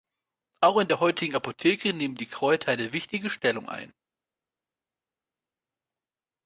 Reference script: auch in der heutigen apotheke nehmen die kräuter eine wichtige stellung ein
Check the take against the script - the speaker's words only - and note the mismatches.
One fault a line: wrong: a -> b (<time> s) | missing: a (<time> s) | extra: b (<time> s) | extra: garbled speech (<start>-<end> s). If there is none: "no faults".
no faults